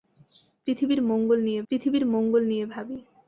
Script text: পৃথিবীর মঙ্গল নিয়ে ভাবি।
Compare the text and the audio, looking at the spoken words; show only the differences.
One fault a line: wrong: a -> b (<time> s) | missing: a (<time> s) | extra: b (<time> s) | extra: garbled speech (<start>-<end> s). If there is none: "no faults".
extra: পৃথিবীর মঙ্গল নিয়ে (1.7 s)